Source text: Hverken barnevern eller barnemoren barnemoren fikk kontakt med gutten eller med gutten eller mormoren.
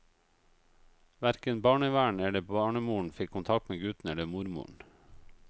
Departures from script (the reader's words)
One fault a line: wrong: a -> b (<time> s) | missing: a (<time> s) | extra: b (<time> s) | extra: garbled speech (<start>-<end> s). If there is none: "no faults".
missing: barnemoren (3.1 s)
missing: med gutten eller (4.2 s)